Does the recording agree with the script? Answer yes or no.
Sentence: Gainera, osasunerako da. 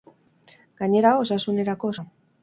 yes